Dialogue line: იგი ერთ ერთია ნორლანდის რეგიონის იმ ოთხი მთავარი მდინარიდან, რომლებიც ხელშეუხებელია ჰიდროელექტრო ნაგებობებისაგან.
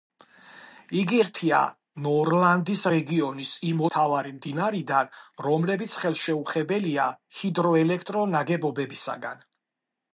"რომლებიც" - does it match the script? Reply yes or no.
yes